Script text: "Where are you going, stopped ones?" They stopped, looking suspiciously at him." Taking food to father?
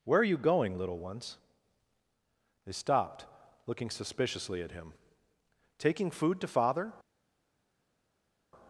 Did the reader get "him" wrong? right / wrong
right